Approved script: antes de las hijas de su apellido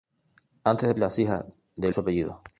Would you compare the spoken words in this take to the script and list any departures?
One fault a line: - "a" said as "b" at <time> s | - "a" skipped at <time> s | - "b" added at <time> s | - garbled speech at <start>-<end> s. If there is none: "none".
none